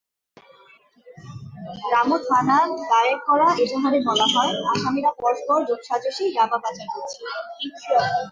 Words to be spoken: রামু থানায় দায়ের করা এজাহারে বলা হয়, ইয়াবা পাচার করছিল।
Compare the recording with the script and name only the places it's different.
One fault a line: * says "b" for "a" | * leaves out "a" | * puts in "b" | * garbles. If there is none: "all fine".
* puts in "আসামিরা পরস্পর যোগসাজশে"